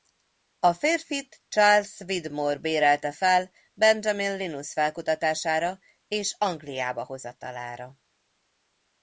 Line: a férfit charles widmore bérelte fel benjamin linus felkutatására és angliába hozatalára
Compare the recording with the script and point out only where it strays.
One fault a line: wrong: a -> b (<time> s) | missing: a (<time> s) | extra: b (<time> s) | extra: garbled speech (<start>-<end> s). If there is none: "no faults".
no faults